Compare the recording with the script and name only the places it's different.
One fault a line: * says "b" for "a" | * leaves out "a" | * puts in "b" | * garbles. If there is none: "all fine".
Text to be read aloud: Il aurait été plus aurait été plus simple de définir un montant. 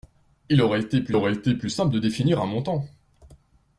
all fine